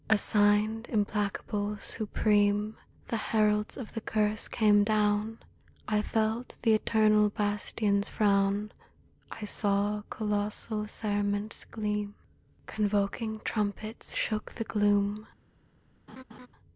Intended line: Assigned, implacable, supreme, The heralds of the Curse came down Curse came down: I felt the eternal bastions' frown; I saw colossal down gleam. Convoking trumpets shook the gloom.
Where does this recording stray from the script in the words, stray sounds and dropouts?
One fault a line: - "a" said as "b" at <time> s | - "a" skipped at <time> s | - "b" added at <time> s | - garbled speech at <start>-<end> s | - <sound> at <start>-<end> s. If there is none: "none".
- "Curse came down" skipped at 5.4 s
- "down" said as "cerements" at 10.9 s
- laugh at 16.1-16.5 s